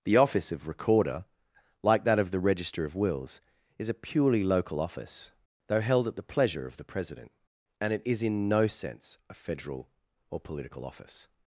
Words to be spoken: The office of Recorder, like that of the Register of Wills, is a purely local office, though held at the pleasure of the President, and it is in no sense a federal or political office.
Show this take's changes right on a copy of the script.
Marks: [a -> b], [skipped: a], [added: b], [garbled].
The office of Recorder, like that of the Register of Wills, is a purely local office, though held at the pleasure of the President, and it is in no sense a federal or political office.